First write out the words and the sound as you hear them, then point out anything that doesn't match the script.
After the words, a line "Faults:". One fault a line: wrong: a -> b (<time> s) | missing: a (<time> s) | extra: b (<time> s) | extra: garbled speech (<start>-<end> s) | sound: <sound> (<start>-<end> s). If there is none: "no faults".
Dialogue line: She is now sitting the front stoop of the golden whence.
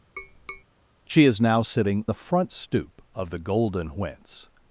She is now sitting the front stoop of the golden whence.
Faults:
sound: tap (0.2-0.6 s)